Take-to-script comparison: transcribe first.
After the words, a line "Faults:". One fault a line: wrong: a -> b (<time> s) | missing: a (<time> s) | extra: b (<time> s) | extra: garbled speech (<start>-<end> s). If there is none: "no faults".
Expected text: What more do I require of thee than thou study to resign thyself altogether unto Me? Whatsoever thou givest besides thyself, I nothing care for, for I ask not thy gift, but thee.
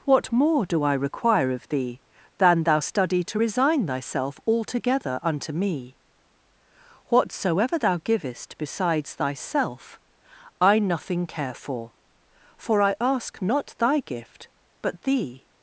What more do I require of thee than thou study to resign thyself altogether unto Me? Whatsoever thou givest besides thyself, I nothing care for, for I ask not thy gift, but thee.
Faults:
no faults